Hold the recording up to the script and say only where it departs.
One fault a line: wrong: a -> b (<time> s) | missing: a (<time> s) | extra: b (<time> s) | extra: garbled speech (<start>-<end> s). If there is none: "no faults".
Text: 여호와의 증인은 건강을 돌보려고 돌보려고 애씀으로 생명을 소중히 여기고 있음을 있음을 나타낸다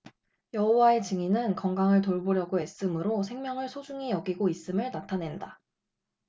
missing: 돌보려고 (2.6 s)
missing: 있음을 (4.9 s)